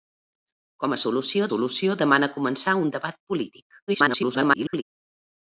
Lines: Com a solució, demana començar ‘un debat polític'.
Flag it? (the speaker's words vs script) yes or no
yes